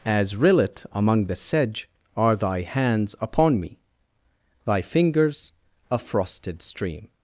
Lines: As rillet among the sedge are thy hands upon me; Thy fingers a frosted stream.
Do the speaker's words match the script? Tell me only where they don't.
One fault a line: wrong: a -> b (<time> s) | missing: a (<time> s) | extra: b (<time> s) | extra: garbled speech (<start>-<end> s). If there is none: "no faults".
no faults